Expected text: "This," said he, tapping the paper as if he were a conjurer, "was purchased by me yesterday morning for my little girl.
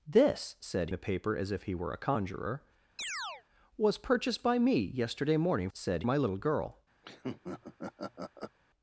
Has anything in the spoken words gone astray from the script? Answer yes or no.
yes